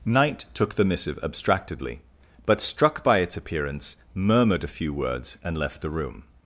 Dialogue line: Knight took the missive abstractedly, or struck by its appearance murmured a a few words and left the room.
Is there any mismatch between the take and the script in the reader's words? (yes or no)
yes